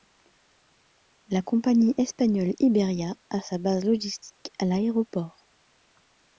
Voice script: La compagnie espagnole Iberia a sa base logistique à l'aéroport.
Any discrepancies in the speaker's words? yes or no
no